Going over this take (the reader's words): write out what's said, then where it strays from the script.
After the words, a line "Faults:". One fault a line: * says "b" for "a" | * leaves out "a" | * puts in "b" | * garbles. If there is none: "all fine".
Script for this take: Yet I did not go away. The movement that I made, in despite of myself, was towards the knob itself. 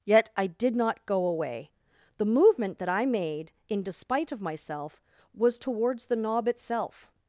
Yet I did not go away. The movement that I made, in despite of myself, was towards the knob itself.
Faults:
all fine